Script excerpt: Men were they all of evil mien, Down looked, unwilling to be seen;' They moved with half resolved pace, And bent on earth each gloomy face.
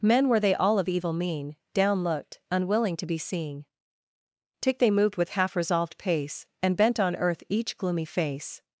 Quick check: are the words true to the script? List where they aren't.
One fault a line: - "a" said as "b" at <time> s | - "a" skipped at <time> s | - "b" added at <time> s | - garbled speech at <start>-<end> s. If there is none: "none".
- "tick" added at 4.6 s